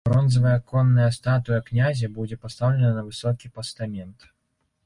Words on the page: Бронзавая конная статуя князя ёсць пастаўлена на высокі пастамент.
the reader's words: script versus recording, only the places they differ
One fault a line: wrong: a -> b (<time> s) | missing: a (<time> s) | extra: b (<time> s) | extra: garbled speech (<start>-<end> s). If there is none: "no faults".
wrong: ёсць -> будзе (2.2 s)